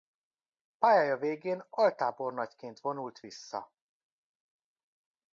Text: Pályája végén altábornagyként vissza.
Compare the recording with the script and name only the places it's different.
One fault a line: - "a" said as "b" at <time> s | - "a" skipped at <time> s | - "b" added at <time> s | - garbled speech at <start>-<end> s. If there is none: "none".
- "vonult" added at 2.8 s